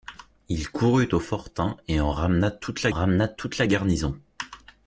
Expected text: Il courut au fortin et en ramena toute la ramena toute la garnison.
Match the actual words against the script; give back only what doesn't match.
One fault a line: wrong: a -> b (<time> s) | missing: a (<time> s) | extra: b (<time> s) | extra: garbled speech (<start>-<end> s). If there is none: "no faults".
no faults